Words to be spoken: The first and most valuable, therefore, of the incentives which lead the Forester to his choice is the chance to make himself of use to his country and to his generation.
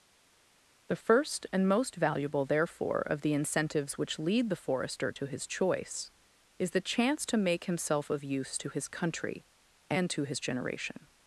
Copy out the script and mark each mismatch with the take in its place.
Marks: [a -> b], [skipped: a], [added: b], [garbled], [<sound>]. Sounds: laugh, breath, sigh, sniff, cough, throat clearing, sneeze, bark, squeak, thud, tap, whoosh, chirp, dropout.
The first and most valuable, therefore, of the incentives which lead the Forester to his choice is the chance to make himself of use to his country and to his generation.